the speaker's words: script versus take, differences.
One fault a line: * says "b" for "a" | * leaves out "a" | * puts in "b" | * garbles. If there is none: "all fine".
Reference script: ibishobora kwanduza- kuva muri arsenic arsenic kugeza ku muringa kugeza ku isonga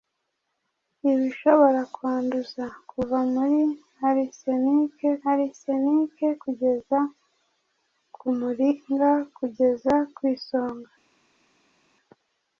all fine